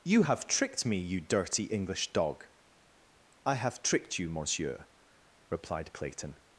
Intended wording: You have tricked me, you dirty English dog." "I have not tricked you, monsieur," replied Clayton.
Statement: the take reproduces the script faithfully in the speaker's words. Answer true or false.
false